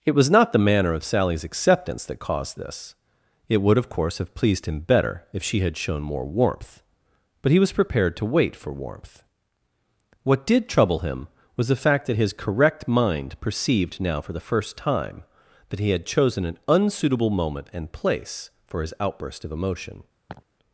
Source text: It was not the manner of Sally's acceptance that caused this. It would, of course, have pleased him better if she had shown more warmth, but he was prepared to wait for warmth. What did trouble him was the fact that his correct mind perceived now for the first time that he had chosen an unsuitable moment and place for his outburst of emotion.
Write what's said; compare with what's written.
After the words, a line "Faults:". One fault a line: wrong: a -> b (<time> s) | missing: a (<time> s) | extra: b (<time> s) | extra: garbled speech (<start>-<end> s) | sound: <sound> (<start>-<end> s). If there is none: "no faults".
It was not the manner of Sally's acceptance that caused this. It would, of course, have pleased him better if she had shown more warmth, but he was prepared to wait for warmth. What did trouble him was the fact that his correct mind perceived now for the first time that he had chosen an unsuitable moment and place for his outburst of emotion.
Faults:
sound: laugh (20.3-20.5 s)